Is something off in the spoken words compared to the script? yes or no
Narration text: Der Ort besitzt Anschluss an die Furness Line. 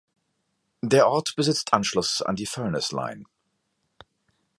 no